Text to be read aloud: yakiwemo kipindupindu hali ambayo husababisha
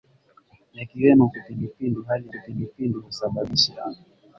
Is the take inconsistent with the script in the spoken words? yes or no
yes